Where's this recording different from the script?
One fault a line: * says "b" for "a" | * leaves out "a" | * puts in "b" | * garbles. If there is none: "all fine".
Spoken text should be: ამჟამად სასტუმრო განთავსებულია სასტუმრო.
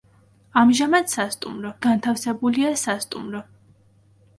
all fine